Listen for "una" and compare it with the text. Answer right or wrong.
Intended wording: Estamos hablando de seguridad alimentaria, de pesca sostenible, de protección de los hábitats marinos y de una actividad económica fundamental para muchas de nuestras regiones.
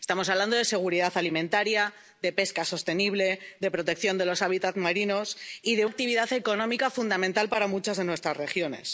wrong